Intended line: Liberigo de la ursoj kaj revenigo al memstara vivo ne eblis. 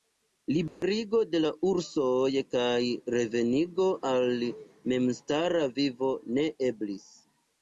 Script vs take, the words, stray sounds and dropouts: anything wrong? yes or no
yes